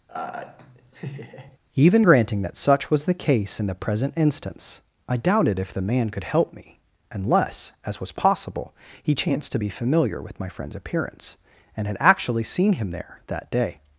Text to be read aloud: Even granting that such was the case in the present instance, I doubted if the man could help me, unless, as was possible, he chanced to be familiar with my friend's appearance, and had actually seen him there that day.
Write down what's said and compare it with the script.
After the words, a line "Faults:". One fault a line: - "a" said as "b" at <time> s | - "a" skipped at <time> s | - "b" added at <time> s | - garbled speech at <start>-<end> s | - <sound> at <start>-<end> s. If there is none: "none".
Even granting that such was the case in the present instance, I doubted if the man could help me, unless, as was possible, he chanced to be familiar with my friend's appearance, and had actually seen him there that day.
Faults:
- laugh at 0.1-1.6 s